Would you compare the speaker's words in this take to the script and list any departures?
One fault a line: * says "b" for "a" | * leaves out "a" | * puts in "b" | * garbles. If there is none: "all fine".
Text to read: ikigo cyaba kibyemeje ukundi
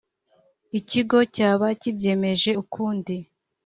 all fine